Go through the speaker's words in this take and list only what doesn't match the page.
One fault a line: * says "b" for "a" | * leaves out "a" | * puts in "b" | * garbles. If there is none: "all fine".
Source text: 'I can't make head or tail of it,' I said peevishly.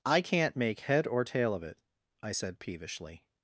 all fine